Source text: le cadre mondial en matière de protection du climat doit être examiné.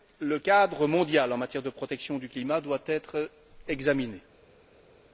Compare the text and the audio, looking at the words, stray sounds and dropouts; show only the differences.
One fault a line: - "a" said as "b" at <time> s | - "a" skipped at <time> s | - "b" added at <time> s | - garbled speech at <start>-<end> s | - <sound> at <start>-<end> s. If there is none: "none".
none